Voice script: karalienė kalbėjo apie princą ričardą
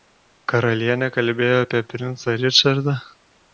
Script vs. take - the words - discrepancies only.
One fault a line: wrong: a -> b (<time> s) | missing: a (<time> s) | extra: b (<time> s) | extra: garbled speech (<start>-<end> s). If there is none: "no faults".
no faults